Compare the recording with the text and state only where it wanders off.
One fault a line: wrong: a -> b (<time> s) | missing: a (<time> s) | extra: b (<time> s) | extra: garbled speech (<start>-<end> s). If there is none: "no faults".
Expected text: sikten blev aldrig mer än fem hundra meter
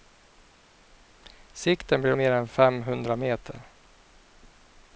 missing: aldrig (2.2 s)